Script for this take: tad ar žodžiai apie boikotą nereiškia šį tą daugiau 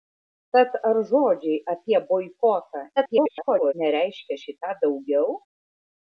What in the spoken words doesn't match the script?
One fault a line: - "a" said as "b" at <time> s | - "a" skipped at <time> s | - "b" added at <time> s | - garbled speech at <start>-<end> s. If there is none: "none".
- garbled speech at 3.0-3.7 s